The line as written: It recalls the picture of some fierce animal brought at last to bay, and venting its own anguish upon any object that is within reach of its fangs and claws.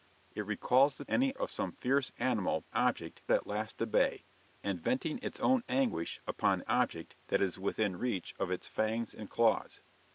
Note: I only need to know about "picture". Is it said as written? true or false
false